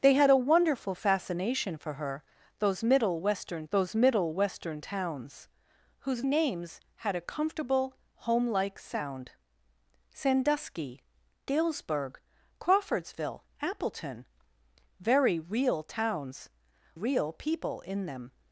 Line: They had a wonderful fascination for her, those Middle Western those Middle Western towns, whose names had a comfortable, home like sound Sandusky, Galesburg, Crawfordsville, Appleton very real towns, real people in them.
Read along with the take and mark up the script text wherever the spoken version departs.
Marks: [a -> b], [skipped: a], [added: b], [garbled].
They had a wonderful fascination for her, those Middle Western those Middle Western towns, whose names had a comfortable, home like sound Sandusky, Galesburg, Crawfordsville, Appleton very real towns, real people in them.